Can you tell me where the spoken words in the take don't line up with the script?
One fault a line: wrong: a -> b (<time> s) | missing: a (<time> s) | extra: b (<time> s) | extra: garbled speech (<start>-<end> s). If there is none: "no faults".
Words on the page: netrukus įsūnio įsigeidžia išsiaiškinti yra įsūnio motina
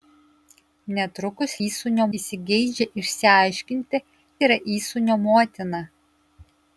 no faults